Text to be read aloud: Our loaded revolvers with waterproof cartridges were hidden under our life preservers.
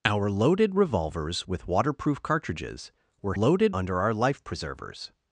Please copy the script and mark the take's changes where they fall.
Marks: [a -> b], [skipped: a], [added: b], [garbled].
Our loaded revolvers with waterproof cartridges were [hidden -> loaded] under our life preservers.